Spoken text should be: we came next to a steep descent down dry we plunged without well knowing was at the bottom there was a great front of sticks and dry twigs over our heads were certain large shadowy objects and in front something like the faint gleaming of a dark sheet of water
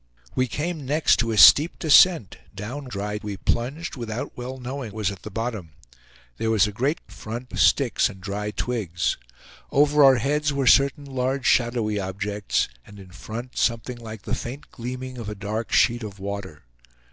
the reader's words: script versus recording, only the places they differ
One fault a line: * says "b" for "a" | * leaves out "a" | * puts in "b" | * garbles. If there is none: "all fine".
all fine